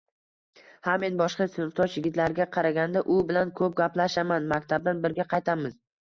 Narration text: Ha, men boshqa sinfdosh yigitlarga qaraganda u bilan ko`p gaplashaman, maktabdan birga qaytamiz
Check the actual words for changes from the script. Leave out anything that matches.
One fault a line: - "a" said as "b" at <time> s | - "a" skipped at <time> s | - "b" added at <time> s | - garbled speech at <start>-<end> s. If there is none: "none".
none